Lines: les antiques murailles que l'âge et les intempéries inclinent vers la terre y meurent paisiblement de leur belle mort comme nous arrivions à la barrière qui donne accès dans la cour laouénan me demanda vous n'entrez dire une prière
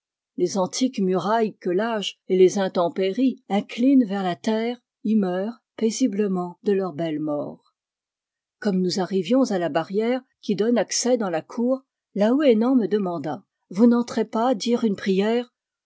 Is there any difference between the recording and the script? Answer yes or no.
yes